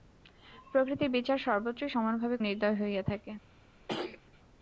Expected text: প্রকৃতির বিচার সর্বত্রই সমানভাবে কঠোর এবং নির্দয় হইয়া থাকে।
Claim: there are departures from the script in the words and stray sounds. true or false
true